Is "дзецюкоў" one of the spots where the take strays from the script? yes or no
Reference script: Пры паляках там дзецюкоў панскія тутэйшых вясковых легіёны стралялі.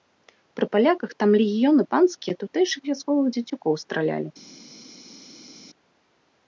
yes